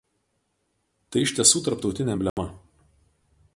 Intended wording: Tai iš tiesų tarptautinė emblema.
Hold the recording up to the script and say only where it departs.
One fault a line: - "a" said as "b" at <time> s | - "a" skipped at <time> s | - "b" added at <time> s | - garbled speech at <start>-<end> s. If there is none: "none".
none